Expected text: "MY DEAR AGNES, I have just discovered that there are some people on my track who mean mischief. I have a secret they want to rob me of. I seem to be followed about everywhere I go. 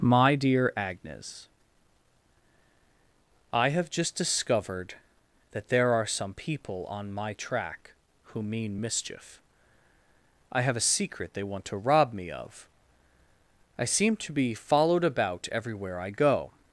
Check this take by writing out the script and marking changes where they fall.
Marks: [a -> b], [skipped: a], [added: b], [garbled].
"MY DEAR AGNES, I have just discovered that there are some people on my track who mean mischief. I have a secret they want to rob me of. I seem to be followed about everywhere I go.